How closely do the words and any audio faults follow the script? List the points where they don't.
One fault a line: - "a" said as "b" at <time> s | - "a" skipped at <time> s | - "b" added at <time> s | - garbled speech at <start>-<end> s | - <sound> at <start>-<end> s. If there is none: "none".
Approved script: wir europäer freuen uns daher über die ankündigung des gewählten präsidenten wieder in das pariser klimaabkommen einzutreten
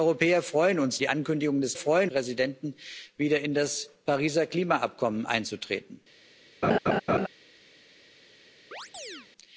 - "daher über" skipped at 1.0 s
- "gewählten" said as "freuen" at 1.7 s
- laugh at 6.6-7.3 s
- chirp at 8.7-9.3 s